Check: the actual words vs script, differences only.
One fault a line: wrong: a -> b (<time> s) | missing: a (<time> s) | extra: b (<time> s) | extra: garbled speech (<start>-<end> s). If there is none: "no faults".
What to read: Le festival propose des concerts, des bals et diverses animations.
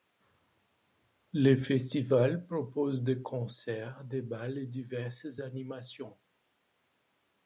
no faults